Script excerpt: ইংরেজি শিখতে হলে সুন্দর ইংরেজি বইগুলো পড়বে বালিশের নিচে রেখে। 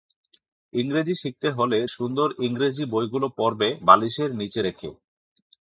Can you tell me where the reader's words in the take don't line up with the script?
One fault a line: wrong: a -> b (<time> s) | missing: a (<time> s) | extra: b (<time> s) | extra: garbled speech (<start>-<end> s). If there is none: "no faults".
no faults